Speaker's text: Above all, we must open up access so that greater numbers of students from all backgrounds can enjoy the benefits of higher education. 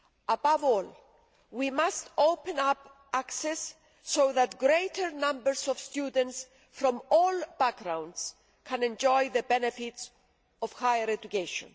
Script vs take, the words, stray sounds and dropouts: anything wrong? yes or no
no